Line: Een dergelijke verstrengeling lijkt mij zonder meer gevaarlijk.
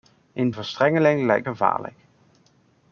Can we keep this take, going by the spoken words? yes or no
no